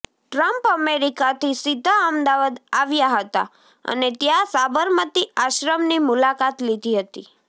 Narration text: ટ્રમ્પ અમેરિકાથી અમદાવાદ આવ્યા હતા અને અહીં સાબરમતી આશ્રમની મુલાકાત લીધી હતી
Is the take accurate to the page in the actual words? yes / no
no